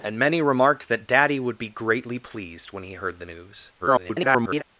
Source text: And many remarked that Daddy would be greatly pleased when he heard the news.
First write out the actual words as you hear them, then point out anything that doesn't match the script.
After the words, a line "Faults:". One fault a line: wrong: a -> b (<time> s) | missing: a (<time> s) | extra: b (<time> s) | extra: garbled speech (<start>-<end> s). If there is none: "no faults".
And many remarked that Daddy would be greatly pleased when he heard the news. [garbled]
Faults:
extra: garbled speech (3.8-4.6 s)